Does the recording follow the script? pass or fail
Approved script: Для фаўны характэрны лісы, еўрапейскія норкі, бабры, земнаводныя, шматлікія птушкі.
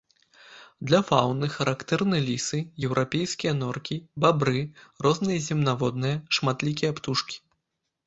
fail